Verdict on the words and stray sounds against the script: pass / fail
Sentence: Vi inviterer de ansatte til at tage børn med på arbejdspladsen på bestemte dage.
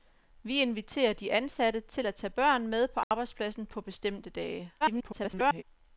fail